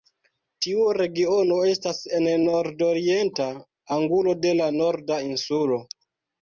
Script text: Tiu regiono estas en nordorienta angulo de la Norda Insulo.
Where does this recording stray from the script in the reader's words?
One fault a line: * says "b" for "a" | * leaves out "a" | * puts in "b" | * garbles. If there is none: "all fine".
all fine